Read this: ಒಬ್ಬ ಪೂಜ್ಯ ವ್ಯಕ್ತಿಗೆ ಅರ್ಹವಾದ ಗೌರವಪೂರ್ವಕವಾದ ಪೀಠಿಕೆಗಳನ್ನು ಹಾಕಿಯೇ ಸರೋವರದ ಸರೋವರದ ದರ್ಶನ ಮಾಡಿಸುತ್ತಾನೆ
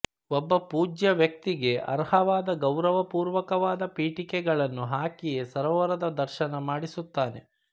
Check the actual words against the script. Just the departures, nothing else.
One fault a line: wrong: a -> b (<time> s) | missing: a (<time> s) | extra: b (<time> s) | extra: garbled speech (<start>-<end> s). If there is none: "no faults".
missing: ಸರೋವರದ (6.1 s)